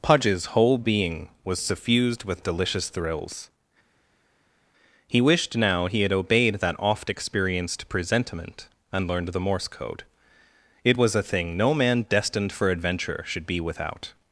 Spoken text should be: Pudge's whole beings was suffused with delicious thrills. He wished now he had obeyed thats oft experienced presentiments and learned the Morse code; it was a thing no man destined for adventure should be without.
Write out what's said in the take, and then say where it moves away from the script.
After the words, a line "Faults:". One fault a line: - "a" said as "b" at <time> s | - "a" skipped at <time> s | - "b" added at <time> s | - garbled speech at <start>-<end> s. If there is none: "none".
Pudge's whole being was suffused with delicious thrills. He wished now he had obeyed that oft experienced presentiment and learned the Morse code; it was a thing no man destined for adventure should be without.
Faults:
- "beings" said as "being" at 0.8 s
- "thats" said as "that" at 6.6 s
- "presentiments" said as "presentiment" at 7.9 s